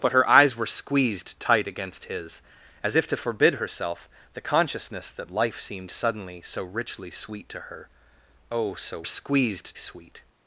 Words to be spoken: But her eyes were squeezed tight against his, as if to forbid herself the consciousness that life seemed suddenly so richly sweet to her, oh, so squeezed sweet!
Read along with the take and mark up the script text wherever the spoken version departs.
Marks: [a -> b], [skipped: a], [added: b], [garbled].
But her eyes were squeezed tight against his, as if to forbid herself the consciousness that life seemed suddenly so richly sweet to her, oh, so squeezed sweet!